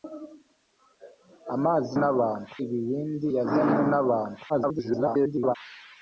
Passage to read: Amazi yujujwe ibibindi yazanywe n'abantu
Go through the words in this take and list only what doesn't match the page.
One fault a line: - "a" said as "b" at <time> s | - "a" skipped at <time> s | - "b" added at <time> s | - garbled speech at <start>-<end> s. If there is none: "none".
- "yujujwe" said as "n'abantu" at 2.0 s
- garbled speech at 4.5-5.6 s